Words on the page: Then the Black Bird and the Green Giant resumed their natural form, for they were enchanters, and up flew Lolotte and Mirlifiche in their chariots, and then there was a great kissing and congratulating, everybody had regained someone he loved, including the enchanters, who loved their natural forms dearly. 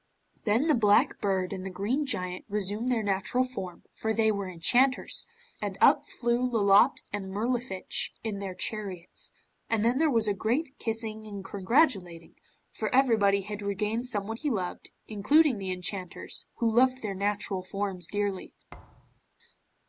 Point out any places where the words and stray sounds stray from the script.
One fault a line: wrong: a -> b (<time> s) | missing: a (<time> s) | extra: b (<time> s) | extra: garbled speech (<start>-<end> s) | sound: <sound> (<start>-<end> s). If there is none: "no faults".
extra: for (12.7 s)
sound: thud (18.7-19.2 s)